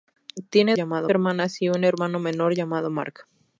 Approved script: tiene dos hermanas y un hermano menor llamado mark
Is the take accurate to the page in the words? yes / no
no